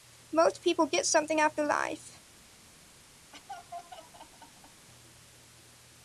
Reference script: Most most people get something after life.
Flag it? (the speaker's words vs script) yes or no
yes